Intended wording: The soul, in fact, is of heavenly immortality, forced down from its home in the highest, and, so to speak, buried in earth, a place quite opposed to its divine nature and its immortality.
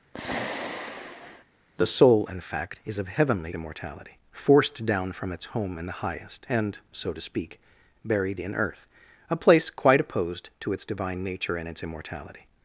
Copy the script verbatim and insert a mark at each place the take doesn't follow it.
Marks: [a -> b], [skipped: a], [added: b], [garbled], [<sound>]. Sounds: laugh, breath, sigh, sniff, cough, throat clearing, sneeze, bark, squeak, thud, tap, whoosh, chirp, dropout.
[sigh] The soul, in fact, is of heavenly immortality, forced down from its home in the highest, and, so to speak, buried in earth, a place quite opposed to its divine nature and its immortality.